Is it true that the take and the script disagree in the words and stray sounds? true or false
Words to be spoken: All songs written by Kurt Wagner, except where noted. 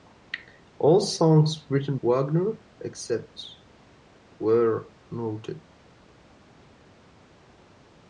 true